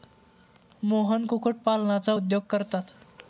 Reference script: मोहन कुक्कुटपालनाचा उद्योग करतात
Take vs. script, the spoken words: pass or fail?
pass